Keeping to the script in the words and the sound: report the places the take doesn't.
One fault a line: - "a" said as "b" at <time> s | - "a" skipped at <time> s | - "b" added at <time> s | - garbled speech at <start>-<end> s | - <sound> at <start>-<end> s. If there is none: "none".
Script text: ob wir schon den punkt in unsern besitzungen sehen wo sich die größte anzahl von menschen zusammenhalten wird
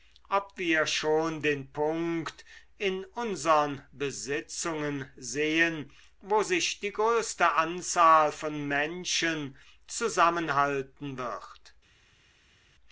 none